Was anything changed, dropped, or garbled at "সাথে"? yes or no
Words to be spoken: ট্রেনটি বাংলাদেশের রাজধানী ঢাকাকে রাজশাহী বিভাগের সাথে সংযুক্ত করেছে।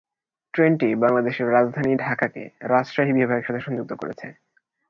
no